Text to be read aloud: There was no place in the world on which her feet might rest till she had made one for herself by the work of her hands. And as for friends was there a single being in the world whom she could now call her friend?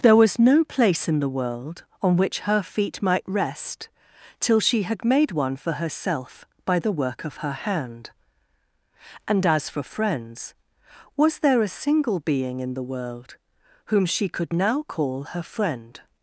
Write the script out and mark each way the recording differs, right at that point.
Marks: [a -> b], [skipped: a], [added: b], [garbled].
There was no place in the world on which her feet might rest till she had made one for herself by the work of her [hands. -> hand] And as for friends was there a single being in the world whom she could now call her friend?